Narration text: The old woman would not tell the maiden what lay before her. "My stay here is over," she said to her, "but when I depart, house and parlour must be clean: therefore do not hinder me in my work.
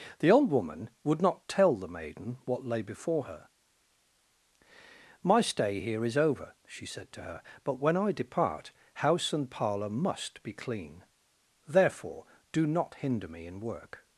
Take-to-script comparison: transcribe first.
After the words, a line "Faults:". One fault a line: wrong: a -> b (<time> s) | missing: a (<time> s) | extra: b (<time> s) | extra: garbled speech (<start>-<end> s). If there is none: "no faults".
The old woman would not tell the maiden what lay before her. "My stay here is over," she said to her, "but when I depart, house and parlour must be clean: therefore do not hinder me in work.
Faults:
missing: my (13.6 s)